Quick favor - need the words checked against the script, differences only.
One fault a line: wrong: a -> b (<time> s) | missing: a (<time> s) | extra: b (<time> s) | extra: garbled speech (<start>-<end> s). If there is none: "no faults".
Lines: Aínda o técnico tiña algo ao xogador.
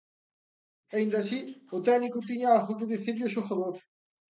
extra: así (1.2 s)
extra: que dicirlle (2.8 s)